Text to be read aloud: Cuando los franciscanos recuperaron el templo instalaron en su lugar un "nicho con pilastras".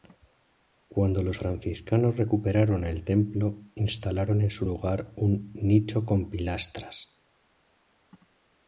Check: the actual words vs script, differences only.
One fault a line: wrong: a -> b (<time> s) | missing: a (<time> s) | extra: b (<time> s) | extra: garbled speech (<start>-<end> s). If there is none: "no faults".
no faults